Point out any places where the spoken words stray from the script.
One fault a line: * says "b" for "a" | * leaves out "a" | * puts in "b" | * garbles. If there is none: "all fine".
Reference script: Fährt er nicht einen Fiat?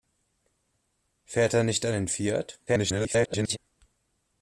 * garbles